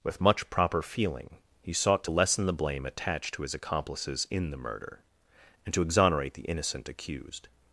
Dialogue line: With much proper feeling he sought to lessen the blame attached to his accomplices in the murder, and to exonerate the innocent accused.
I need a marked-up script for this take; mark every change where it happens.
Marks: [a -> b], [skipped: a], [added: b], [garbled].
With much proper feeling he sought to lessen the blame attached to his accomplices in the murder, and to exonerate the innocent accused.